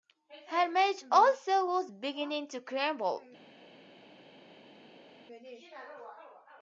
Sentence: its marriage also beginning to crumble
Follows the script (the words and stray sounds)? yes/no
no